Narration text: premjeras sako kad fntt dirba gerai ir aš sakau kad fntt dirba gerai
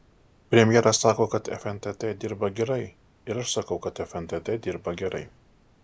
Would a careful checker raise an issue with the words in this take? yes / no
no